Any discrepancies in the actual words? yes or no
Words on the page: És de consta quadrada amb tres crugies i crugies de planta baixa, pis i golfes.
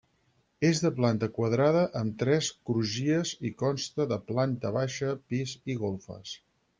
yes